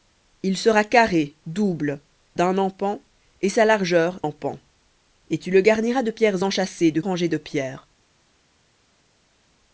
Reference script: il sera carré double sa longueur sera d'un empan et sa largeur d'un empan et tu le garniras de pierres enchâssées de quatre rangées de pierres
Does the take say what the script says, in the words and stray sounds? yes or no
no